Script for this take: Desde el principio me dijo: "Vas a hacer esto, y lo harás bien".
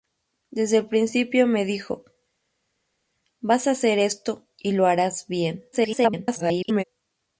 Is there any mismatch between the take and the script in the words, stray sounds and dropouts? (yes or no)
yes